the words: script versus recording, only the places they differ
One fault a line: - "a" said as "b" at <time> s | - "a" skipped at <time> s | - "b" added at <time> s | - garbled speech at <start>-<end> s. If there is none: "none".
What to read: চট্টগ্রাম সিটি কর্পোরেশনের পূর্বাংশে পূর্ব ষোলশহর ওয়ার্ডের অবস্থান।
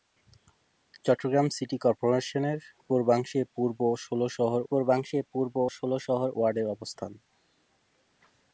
- "পূর্বাংশে পূর্ব ষোলশহর" added at 4.7 s